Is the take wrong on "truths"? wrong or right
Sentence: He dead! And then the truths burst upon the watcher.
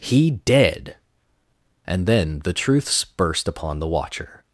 right